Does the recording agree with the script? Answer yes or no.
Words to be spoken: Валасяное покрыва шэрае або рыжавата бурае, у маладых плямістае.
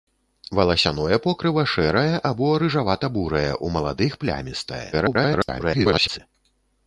no